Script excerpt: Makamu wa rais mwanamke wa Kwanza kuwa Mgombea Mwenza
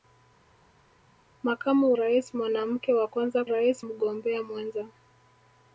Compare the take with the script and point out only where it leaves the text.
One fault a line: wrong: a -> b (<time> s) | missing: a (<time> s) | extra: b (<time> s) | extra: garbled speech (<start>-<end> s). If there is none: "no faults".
missing: wa (1.9 s)
wrong: kuwa -> rais (3.5 s)